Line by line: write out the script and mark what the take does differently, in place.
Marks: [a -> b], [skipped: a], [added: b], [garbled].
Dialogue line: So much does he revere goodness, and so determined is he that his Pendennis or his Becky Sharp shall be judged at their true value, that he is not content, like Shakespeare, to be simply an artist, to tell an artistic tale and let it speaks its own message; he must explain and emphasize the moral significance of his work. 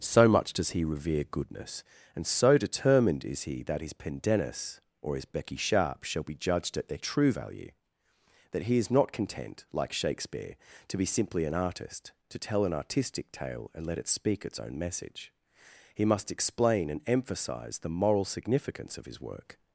So much does he revere goodness, and so determined is he that his Pendennis or his Becky Sharp shall be judged at their true value, that he is not content, like Shakespeare, to be simply an artist, to tell an artistic tale and let it [speaks -> speak] its own message; he must explain and emphasize the moral significance of his work.